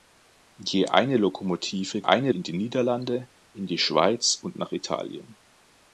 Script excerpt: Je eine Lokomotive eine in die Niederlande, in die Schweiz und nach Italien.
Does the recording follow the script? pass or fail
pass